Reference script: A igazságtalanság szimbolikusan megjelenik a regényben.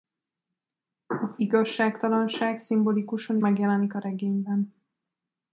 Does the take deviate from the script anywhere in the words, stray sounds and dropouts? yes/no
no